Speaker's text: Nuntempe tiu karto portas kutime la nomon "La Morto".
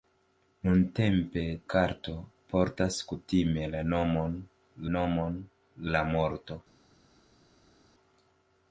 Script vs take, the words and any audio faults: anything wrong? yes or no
yes